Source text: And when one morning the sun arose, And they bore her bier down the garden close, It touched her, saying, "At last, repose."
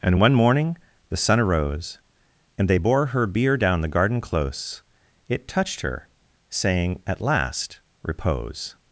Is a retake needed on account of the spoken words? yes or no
yes